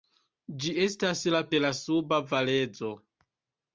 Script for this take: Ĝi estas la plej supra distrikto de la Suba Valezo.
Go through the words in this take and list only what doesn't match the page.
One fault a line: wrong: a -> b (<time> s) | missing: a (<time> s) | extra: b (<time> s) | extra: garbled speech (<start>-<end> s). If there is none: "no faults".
missing: plej supra distrikto (1.4 s)